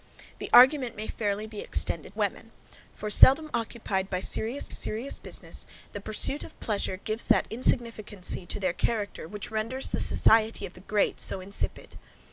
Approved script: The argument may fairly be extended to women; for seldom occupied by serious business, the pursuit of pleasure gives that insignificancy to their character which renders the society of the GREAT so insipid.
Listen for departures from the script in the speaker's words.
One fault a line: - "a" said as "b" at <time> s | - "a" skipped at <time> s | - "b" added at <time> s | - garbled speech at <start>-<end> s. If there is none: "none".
- "to" skipped at 2.2 s
- "serious" added at 4.7 s